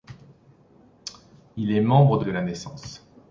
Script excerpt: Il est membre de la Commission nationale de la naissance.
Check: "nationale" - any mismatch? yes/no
yes